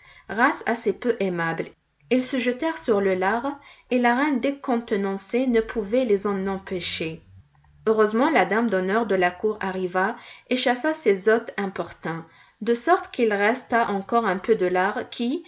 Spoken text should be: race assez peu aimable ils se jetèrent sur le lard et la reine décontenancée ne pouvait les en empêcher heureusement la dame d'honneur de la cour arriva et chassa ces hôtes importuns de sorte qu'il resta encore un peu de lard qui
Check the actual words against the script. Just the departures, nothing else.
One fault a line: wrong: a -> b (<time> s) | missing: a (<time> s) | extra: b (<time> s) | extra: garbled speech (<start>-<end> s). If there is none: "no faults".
no faults